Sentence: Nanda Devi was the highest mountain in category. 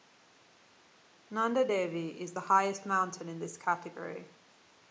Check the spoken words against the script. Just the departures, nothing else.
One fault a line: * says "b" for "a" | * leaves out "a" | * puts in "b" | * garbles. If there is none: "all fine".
* says "is" for "was"
* puts in "this"